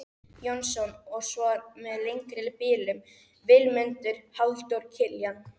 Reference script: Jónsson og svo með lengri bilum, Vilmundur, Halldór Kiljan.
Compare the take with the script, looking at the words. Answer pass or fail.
pass